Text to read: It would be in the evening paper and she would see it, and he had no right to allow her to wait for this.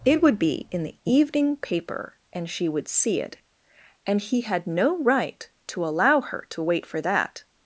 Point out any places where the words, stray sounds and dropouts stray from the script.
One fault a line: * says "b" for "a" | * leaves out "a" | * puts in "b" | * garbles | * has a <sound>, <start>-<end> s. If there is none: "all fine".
* says "that" for "this"